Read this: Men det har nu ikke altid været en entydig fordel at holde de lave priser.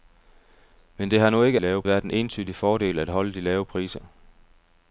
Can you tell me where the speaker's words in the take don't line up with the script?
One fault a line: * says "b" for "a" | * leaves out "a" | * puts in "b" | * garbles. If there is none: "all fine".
* says "lave" for "altid"